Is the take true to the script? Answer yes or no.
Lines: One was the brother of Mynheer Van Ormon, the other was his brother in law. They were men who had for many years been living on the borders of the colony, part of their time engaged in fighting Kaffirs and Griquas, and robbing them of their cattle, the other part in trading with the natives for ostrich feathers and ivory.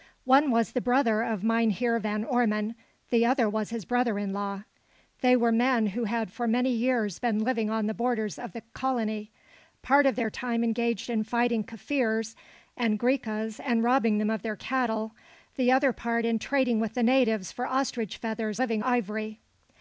no